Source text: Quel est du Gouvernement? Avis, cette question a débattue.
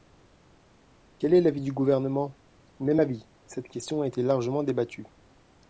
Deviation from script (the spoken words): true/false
true